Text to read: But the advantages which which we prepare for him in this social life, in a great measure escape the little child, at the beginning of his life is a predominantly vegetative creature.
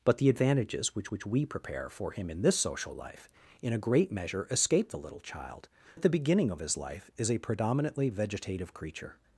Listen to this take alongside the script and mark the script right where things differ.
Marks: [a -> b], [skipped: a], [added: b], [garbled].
But the advantages which which we prepare for him in this social life, in a great measure escape the little child, at the beginning of his life is a predominantly vegetative creature.